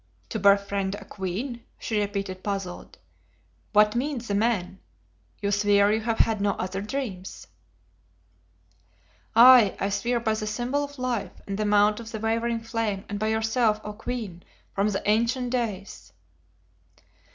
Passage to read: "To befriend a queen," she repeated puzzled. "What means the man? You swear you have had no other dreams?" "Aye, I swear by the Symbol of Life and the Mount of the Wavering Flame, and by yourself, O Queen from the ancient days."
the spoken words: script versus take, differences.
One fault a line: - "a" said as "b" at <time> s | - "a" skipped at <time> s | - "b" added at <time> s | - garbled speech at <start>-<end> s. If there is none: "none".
none